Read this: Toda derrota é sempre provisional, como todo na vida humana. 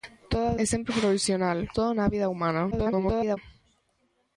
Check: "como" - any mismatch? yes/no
yes